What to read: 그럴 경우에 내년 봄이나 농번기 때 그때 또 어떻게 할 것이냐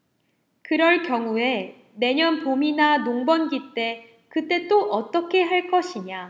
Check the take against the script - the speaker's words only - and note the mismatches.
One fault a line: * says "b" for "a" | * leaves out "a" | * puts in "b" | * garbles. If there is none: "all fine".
all fine